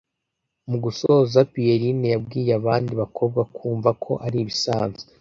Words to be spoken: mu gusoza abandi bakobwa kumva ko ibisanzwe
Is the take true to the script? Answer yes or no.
no